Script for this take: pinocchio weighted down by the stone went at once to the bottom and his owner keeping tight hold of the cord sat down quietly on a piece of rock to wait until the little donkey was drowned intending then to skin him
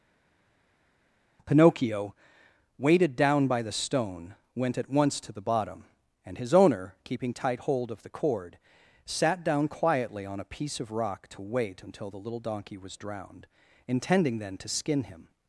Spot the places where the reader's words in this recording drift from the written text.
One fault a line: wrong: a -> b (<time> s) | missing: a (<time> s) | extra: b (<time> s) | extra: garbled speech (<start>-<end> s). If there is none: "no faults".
no faults